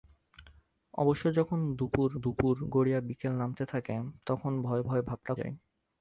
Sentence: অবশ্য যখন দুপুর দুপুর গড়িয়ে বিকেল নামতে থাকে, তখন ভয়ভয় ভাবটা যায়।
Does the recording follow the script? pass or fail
pass